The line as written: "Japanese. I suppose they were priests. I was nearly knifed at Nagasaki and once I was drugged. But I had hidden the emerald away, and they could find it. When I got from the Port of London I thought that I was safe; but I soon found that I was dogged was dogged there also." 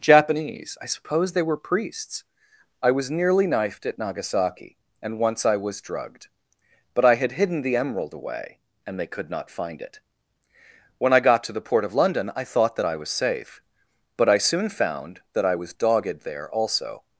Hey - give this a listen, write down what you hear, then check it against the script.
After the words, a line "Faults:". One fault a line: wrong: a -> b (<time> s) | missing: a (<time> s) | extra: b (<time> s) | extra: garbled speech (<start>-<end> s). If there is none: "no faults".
"Japanese. I suppose they were priests. I was nearly knifed at Nagasaki and once I was drugged. But I had hidden the emerald away, and they could not find it. When I got to the Port of London I thought that I was safe; but I soon found that I was dogged there also."
Faults:
extra: not (9.3 s)
wrong: from -> to (11.4 s)
missing: was dogged (16.3 s)